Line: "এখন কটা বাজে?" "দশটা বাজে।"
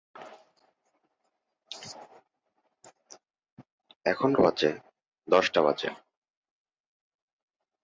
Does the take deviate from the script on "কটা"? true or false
true